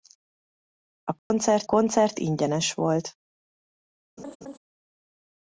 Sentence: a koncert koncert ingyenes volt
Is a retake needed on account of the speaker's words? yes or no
no